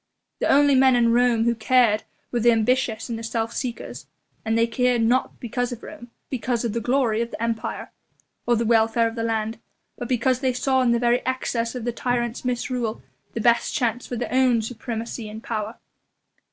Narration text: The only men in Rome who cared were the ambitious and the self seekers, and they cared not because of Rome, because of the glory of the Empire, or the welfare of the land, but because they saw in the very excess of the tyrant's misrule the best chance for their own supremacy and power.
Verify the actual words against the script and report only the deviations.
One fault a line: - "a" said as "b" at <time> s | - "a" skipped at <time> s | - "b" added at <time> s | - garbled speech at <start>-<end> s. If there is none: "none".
none